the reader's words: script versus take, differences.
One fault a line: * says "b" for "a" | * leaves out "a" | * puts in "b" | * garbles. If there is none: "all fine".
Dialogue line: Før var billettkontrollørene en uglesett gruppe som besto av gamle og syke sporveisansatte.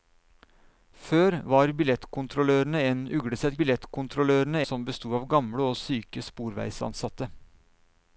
* says "billettkontrollørene" for "gruppe"